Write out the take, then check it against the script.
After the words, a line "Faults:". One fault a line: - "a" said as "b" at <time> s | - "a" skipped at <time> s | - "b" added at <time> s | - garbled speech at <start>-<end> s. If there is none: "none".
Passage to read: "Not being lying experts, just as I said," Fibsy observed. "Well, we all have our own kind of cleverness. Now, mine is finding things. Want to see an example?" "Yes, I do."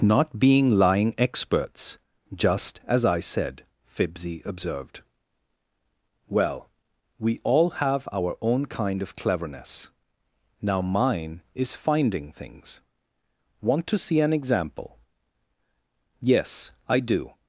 "Not being lying experts, just as I said," Fibsy observed. "Well, we all have our own kind of cleverness. Now, mine is finding things. Want to see an example?" "Yes, I do."
Faults:
none